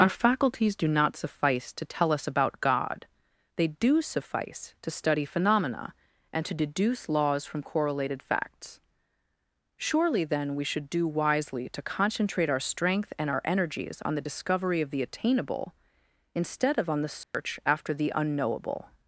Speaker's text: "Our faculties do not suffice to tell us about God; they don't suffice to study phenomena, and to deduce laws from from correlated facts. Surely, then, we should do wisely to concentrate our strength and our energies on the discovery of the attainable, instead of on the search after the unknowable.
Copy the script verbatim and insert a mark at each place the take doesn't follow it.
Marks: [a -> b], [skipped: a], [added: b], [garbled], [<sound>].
"Our faculties do not suffice to tell us about God; they [don't -> do] suffice to study phenomena, and to deduce laws from [skipped: from] correlated facts. Surely, then, we should do wisely to concentrate our strength and our energies on the discovery of the attainable, instead of on the search [dropout] after the unknowable.